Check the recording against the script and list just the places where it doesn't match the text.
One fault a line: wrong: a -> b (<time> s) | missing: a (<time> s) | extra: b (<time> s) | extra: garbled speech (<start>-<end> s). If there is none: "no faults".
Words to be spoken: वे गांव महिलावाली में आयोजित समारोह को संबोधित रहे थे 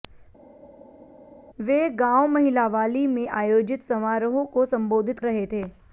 no faults